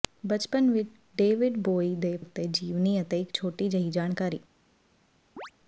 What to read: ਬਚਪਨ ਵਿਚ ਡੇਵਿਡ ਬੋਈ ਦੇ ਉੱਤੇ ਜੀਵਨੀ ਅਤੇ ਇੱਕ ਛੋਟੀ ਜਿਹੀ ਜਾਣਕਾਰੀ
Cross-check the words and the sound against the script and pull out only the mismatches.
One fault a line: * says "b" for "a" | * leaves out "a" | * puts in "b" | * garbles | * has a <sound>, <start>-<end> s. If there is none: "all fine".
* has a chirp, 5.4-5.5 s